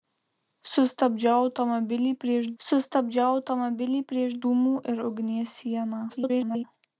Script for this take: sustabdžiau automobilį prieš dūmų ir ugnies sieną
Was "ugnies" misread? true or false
false